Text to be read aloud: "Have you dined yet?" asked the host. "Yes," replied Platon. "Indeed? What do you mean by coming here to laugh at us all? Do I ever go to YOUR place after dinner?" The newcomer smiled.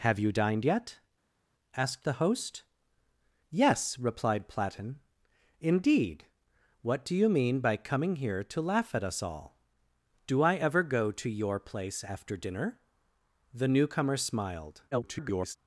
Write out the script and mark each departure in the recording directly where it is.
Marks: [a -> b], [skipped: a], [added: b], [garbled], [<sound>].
"Have you dined yet?" asked the host. "Yes," replied Platon. "Indeed? What do you mean by coming here to laugh at us all? Do I ever go to YOUR place after dinner?" The newcomer smiled. [garbled]